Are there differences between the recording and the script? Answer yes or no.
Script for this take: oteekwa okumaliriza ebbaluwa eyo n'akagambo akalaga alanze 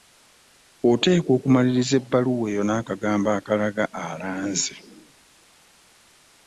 no